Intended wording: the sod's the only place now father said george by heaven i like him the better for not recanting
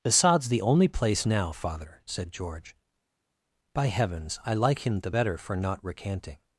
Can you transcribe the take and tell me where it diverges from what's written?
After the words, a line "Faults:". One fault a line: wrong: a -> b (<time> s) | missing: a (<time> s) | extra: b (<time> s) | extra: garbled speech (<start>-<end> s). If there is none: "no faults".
the sod's the only place now father said george by heavens i like him the better for not recanting
Faults:
wrong: heaven -> heavens (3.9 s)